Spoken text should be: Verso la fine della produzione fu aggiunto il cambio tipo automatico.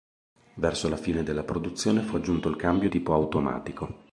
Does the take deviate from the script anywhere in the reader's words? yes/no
no